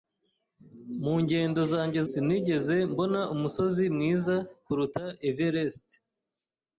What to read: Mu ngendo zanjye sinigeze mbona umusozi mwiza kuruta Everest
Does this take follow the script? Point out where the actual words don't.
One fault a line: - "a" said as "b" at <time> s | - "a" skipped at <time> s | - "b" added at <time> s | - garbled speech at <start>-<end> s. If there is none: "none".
none